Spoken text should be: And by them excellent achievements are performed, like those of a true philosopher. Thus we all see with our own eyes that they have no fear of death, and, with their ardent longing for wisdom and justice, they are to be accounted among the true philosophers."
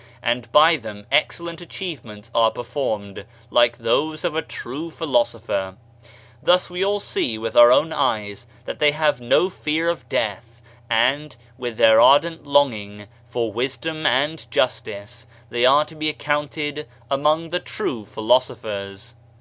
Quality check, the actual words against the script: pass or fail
pass